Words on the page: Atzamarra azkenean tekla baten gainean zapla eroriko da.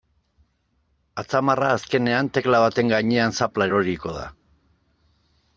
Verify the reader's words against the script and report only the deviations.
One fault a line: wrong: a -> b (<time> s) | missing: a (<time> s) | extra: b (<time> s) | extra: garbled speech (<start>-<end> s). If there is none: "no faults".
no faults